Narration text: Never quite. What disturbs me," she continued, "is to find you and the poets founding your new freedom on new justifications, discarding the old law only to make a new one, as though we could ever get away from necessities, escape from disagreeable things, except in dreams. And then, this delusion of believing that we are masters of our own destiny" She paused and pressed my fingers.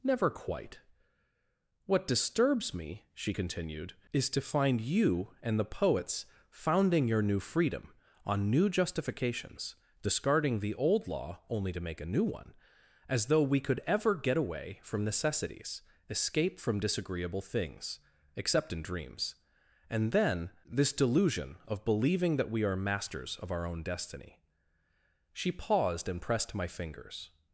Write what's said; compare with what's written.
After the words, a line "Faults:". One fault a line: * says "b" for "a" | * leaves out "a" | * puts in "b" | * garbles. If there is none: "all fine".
Never quite. What disturbs me," she continued, "is to find you and the poets founding your new freedom on new justifications, discarding the old law only to make a new one, as though we could ever get away from necessities, escape from disagreeable things, except in dreams. And then, this delusion of believing that we are masters of our own destiny" She paused and pressed my fingers.
Faults:
all fine